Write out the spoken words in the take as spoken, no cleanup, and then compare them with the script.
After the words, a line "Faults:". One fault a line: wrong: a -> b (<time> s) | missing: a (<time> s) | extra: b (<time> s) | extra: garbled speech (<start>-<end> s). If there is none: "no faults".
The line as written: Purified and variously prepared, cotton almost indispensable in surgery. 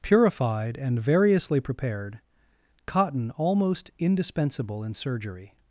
Purified and variously prepared, cotton almost indispensable in surgery.
Faults:
no faults